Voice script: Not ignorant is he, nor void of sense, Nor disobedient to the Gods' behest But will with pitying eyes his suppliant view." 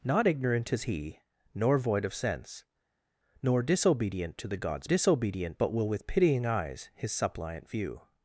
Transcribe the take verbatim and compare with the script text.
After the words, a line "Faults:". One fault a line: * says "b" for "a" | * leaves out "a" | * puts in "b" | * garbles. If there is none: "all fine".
Not ignorant is he, nor void of sense, Nor disobedient to the Gods' disobedient But will with pitying eyes his suppliant view."
Faults:
* says "disobedient" for "behest"